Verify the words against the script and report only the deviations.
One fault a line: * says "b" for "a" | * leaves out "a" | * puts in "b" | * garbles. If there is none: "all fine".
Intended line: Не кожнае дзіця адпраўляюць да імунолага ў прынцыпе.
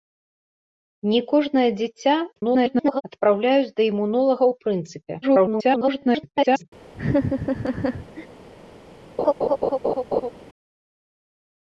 * garbles
* garbles